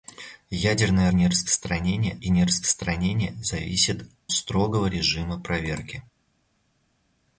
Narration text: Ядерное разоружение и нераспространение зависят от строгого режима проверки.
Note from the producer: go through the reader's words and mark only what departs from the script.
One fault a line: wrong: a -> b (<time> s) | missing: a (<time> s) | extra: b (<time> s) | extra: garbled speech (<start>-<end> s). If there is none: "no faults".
wrong: разоружение -> нераспространение (1.1 s)
missing: от (4.1 s)